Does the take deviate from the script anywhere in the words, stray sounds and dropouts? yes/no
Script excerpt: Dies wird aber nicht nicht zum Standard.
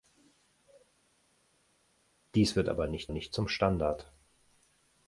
no